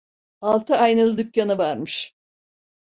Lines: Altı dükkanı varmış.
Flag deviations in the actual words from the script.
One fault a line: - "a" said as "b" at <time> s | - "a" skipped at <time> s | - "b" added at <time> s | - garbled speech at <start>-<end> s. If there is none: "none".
- "aynalı" added at 0.8 s